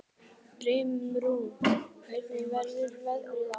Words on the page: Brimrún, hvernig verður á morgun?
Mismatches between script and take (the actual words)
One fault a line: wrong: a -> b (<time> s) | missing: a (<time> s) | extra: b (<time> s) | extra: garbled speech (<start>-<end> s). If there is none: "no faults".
extra: veðrið (3.1 s)